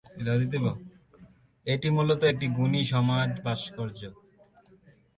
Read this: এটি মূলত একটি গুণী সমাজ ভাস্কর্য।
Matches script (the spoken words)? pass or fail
pass